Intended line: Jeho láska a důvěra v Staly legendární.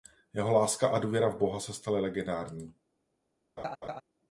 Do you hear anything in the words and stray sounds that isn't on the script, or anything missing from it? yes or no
yes